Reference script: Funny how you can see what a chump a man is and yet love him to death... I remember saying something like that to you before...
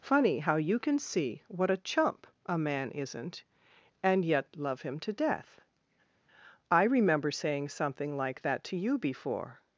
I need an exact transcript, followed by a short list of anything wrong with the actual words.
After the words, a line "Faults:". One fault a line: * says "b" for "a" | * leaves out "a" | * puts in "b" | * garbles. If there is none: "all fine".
Funny how you can see what a chump a man isn't and yet love him to death... I remember saying something like that to you before...
Faults:
* says "isn't" for "is"